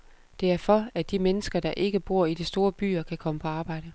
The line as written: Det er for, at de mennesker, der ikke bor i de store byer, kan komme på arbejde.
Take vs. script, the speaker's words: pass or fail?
pass